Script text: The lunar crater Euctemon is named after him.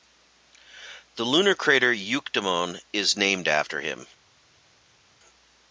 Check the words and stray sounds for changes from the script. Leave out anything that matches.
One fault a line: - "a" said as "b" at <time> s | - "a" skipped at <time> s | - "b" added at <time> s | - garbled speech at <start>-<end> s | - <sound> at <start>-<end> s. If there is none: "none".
none